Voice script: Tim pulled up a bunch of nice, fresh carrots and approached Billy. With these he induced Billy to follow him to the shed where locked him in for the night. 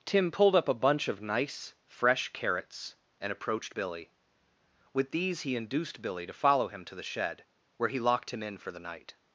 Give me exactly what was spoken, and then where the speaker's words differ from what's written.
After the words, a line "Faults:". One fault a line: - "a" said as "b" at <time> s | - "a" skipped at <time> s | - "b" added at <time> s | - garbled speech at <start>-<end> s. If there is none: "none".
Tim pulled up a bunch of nice, fresh carrots and approached Billy. With these he induced Billy to follow him to the shed where he locked him in for the night.
Faults:
- "he" added at 7.9 s